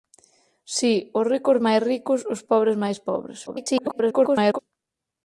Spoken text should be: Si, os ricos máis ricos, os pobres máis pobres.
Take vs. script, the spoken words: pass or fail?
fail